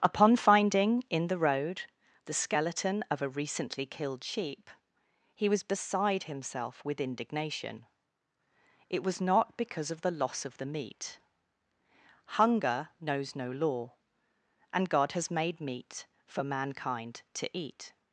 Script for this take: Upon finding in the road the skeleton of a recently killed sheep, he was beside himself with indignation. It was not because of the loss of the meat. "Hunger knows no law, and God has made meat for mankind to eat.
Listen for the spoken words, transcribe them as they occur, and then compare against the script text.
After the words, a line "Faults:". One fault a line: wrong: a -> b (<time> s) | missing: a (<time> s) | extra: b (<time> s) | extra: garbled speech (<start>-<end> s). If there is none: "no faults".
Upon finding in the road the skeleton of a recently killed sheep, he was beside himself with indignation. It was not because of the loss of the meat. "Hunger knows no law, and God has made meat for mankind to eat.
Faults:
no faults